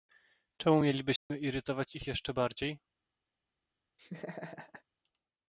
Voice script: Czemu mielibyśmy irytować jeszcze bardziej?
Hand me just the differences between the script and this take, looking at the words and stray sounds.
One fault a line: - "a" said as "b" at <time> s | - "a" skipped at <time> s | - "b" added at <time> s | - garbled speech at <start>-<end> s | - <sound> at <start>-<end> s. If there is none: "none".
- dropout at 1.2-1.3 s
- "ich" added at 1.9 s
- laugh at 4.0-4.8 s